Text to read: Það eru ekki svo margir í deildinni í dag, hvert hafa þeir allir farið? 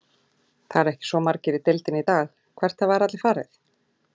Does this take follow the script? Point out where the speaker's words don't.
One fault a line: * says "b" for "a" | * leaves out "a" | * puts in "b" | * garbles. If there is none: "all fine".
all fine